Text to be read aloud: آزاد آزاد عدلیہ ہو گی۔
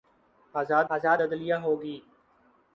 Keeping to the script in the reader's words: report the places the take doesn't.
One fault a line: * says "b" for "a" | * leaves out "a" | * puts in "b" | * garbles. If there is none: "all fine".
all fine